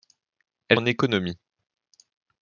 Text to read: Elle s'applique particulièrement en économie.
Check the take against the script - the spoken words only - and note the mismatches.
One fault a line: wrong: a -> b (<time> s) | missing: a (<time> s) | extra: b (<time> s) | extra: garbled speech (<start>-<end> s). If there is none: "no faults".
missing: s'applique particulièrement (0.8 s)